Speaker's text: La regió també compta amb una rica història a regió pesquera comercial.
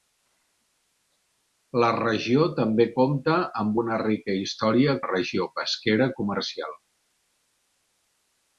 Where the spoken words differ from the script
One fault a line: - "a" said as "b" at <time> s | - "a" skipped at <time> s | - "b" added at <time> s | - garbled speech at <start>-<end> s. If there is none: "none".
none